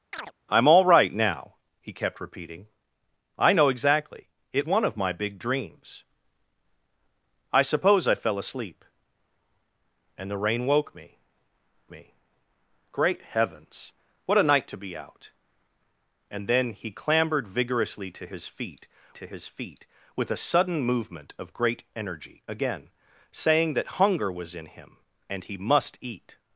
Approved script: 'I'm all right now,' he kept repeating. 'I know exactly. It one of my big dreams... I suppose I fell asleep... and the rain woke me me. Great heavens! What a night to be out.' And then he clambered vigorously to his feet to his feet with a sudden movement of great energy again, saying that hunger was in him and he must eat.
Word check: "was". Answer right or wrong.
right